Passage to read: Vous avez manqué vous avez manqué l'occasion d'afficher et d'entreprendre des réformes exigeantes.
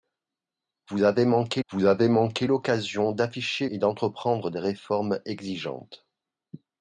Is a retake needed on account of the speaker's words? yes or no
no